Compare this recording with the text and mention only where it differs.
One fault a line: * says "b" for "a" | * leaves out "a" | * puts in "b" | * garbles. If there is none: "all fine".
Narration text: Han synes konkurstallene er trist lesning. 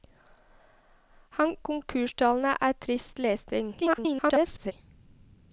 * leaves out "synes"
* garbles